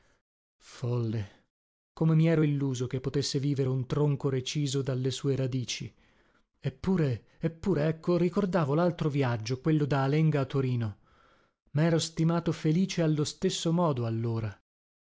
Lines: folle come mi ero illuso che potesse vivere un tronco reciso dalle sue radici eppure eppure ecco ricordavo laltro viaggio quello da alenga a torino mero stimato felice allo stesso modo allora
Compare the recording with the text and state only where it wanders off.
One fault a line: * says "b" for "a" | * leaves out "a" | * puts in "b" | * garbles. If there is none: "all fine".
all fine